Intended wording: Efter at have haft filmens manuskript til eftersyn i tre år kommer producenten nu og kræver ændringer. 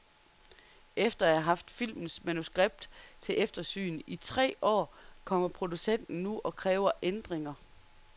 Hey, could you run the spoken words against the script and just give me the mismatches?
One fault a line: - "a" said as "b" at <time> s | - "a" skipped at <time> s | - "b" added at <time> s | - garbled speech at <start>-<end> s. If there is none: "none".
none